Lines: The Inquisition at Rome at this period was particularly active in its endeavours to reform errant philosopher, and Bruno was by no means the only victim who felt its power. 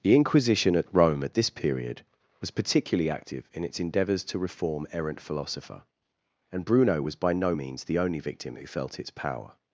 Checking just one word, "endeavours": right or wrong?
right